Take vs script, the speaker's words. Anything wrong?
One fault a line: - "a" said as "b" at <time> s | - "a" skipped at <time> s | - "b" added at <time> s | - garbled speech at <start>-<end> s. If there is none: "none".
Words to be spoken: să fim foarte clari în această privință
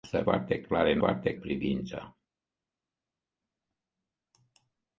- "fim" skipped at 0.2 s
- "această" said as "foarte" at 1.0 s